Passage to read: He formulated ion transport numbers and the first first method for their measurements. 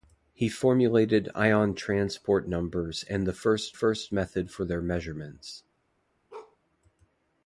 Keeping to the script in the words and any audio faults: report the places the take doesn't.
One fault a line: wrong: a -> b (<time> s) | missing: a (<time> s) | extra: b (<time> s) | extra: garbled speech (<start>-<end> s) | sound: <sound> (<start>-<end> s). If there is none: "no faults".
sound: bark (6.3-6.6 s)